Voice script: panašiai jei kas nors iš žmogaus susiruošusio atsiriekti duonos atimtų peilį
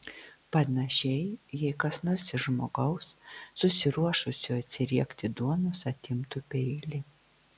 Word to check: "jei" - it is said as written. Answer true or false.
true